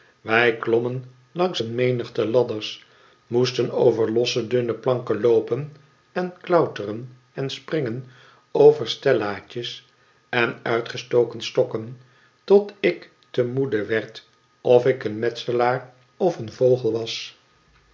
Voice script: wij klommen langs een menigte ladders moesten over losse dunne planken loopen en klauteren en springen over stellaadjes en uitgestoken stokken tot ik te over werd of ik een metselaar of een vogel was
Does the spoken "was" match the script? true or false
true